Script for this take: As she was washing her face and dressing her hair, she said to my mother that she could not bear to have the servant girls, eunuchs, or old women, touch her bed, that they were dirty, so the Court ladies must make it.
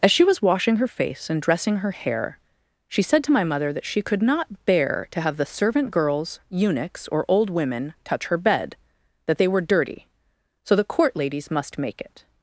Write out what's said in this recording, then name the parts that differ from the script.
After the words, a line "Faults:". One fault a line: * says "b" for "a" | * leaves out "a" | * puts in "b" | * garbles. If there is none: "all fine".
As she was washing her face and dressing her hair, she said to my mother that she could not bear to have the servant girls, eunuchs, or old women, touch her bed, that they were dirty, so the Court ladies must make it.
Faults:
all fine